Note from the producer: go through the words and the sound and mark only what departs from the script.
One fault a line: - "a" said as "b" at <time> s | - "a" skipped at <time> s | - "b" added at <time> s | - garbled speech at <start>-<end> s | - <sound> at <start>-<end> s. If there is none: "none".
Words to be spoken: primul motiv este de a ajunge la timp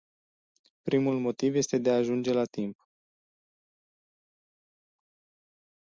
none